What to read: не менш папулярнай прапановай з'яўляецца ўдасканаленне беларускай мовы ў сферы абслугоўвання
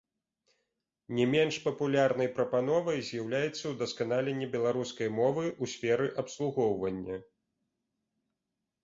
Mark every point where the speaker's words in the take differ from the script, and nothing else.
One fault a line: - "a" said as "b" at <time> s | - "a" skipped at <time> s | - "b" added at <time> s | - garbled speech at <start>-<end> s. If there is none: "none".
none